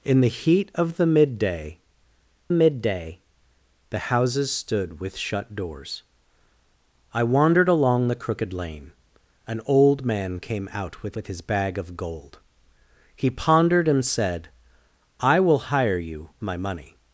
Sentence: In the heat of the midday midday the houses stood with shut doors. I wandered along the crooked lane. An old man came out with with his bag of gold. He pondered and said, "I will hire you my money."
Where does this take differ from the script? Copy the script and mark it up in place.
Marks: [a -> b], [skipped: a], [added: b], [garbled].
In the heat of the midday midday the houses stood with shut doors. I wandered along the crooked lane. An old man came out with with his bag of gold. He pondered and said, "I will hire you my money."